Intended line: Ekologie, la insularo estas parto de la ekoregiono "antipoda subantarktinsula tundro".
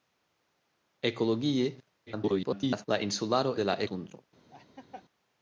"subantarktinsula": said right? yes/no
no